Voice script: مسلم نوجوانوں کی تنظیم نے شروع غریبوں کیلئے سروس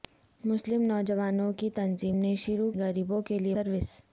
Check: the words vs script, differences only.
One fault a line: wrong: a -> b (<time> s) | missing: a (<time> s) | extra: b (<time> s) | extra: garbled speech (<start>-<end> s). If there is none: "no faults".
no faults